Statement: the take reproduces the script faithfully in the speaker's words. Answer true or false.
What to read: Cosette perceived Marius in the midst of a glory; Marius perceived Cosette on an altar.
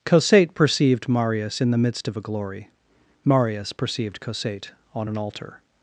true